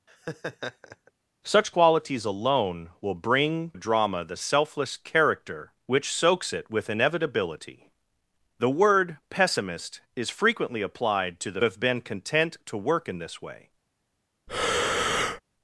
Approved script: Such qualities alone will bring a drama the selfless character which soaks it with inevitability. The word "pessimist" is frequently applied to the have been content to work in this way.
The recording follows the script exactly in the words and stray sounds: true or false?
false